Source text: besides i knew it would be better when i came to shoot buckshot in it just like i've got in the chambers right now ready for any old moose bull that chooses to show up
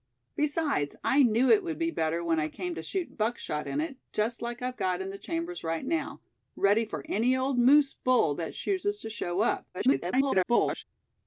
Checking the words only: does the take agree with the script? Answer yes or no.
no